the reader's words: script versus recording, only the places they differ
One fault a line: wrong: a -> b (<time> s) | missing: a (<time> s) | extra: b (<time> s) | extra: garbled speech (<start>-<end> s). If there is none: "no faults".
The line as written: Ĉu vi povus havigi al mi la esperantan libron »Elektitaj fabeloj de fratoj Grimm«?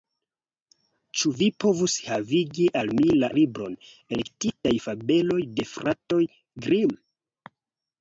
missing: esperantan (3.3 s)